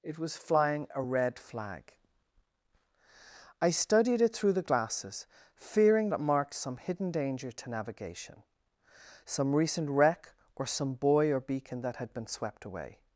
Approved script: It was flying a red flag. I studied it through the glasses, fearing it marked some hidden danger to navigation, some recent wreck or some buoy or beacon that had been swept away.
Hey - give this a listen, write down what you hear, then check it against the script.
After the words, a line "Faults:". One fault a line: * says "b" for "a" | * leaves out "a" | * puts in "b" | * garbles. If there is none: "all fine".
It was flying a red flag. I studied it through the glasses, fearing it marked some hidden danger to navigation, some recent wreck or some buoy or beacon that had been swept away.
Faults:
all fine